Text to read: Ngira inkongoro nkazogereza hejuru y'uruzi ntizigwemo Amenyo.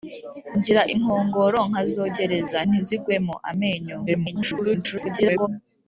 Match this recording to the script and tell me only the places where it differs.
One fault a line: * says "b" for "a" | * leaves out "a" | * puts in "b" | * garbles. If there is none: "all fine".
* leaves out "hejuru y'uruzi"
* garbles